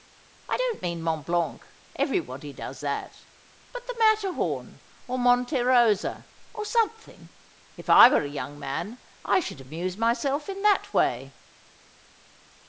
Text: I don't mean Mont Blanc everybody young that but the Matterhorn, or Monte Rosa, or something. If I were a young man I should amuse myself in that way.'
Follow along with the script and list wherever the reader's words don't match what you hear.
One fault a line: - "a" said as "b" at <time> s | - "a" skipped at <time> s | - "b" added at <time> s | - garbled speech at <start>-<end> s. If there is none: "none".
- "young" said as "does" at 2.5 s